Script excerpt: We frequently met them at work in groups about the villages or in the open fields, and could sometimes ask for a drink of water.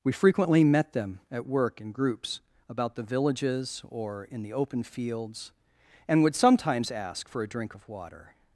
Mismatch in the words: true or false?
true